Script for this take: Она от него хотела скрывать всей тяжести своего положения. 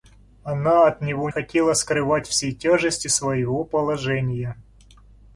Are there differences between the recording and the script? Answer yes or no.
no